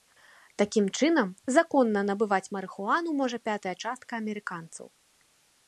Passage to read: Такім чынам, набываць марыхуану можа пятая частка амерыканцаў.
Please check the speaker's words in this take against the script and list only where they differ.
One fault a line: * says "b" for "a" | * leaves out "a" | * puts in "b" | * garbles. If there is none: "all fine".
* puts in "законна"